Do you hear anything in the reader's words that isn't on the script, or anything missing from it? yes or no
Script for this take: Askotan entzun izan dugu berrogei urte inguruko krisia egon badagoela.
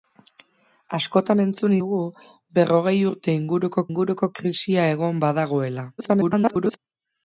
yes